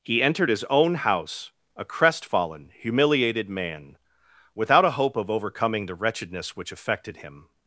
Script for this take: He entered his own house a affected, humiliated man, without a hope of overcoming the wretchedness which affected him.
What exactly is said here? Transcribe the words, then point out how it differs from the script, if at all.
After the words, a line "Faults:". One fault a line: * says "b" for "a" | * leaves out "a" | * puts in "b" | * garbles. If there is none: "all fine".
He entered his own house a crestfallen, humiliated man, without a hope of overcoming the wretchedness which affected him.
Faults:
* says "crestfallen" for "affected"